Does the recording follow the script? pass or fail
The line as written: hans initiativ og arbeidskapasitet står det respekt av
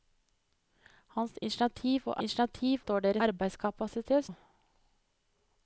fail